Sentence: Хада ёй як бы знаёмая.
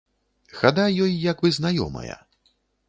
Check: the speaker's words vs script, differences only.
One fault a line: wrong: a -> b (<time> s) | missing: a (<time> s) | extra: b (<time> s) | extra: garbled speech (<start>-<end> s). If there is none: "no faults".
no faults